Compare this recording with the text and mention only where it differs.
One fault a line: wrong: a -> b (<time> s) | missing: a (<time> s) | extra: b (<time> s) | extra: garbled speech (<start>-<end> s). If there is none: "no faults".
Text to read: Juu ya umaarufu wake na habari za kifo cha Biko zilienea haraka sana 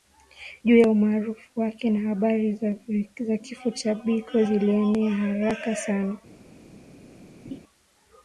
no faults